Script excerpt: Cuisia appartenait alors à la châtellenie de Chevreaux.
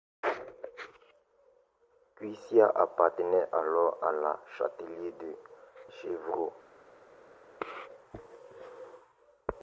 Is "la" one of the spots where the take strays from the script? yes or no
no